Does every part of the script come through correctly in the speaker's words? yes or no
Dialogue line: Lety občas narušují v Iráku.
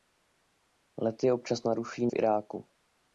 yes